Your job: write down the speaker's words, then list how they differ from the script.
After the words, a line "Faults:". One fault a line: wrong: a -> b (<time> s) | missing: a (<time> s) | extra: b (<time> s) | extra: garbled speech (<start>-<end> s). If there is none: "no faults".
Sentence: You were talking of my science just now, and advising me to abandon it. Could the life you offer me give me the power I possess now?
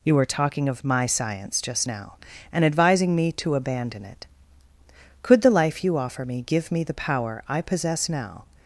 You were talking of my science just now, and advising me to abandon it. Could the life you offer me give me the power I possess now?
Faults:
no faults